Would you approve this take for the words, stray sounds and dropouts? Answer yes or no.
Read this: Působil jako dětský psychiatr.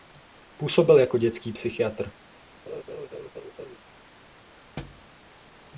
no